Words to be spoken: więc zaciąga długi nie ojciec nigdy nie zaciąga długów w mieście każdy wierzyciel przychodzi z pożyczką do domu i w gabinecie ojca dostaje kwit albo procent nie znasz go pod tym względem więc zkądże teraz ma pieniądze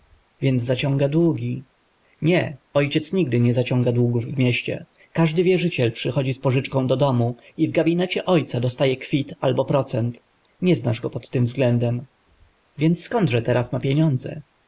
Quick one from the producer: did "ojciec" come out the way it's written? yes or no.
yes